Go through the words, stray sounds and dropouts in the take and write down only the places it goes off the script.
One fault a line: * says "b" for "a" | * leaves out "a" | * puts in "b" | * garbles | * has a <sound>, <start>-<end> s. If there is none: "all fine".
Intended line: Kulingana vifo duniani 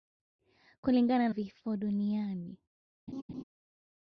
* has a laugh, 3.1-3.4 s